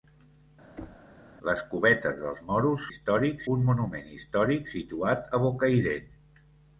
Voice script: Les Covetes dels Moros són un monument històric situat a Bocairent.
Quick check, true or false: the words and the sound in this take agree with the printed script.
false